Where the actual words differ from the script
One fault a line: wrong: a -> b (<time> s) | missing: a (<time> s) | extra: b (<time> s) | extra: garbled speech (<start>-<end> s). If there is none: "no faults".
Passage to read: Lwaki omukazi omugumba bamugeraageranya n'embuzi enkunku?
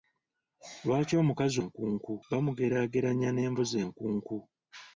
wrong: omugumba -> enkunku (1.6 s)